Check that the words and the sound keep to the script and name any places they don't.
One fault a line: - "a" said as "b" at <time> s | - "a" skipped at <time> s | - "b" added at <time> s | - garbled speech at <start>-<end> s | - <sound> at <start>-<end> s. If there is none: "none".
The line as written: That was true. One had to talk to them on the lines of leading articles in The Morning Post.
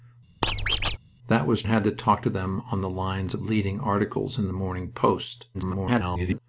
- squeak at 0.4-1.0 s
- "true One" skipped at 1.6 s
- garbled speech at 5.5-6.4 s